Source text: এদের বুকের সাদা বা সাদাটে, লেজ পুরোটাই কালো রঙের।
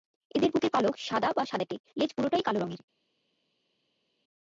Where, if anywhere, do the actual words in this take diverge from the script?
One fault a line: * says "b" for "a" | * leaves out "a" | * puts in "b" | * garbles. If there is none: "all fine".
* puts in "পালক"